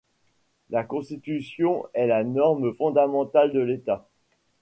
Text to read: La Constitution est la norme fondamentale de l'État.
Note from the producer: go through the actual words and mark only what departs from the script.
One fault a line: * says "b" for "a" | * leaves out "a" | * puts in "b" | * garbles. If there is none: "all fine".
all fine